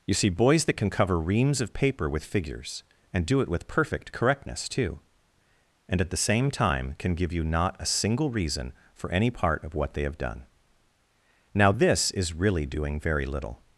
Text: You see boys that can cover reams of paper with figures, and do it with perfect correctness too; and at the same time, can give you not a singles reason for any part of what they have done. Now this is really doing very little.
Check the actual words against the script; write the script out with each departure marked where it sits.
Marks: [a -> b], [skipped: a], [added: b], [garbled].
You see boys that can cover reams of paper with figures, and do it with perfect correctness too; and at the same time, can give you not a [singles -> single] reason for any part of what they have done. Now this is really doing very little.